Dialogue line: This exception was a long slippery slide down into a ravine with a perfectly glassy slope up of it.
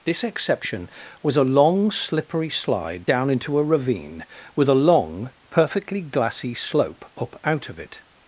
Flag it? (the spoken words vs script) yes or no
yes